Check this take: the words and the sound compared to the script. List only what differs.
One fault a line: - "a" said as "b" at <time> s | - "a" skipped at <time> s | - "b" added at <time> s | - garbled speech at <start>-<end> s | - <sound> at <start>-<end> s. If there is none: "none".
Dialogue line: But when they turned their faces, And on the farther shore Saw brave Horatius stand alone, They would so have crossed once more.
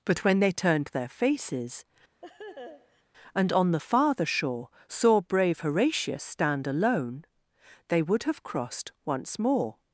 - laugh at 2.2-3.0 s
- "so" skipped at 8.2 s